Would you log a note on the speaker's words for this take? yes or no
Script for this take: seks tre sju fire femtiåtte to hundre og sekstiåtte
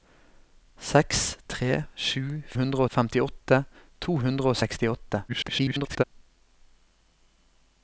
yes